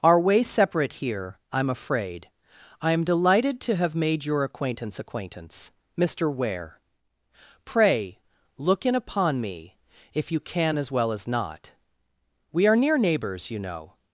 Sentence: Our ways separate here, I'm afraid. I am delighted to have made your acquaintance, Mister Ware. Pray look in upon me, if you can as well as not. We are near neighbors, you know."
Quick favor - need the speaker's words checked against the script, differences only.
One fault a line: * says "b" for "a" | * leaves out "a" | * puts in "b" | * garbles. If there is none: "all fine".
* puts in "acquaintance"